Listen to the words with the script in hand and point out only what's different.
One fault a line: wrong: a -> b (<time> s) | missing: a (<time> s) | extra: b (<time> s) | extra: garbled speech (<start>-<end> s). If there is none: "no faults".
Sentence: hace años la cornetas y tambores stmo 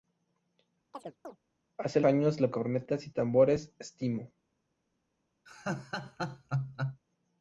no faults